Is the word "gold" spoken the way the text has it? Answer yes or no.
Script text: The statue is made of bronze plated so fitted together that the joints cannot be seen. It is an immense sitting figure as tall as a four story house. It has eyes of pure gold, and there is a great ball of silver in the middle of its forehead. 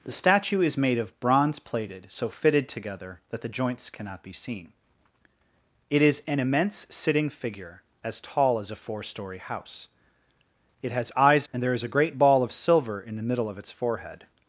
no